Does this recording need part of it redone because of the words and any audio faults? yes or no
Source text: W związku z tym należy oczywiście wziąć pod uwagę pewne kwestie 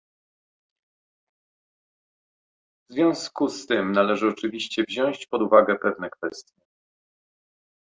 no